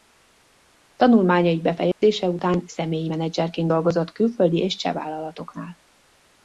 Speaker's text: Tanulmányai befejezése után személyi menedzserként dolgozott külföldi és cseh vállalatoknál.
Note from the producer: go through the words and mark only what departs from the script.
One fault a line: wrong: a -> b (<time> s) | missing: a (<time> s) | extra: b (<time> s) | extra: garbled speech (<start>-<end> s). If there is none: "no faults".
no faults